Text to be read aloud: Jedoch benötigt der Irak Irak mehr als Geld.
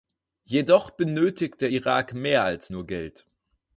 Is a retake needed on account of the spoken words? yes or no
yes